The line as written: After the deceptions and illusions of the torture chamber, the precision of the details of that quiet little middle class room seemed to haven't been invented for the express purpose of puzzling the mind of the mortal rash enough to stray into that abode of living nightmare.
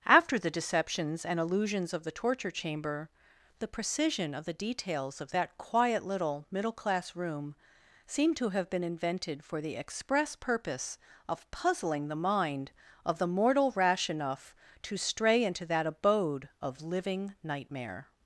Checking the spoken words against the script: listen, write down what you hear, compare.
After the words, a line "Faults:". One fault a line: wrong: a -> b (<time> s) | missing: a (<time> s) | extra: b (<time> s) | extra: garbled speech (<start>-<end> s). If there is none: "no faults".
After the deceptions and illusions of the torture chamber, the precision of the details of that quiet little middle class room seemed to have been invented for the express purpose of puzzling the mind of the mortal rash enough to stray into that abode of living nightmare.
Faults:
wrong: haven't -> have (8.5 s)